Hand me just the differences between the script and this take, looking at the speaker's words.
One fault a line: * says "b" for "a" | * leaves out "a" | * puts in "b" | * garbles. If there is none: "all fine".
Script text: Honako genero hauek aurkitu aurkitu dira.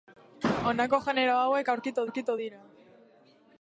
all fine